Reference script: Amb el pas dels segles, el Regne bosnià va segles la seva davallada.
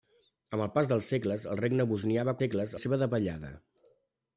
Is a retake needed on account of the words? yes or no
no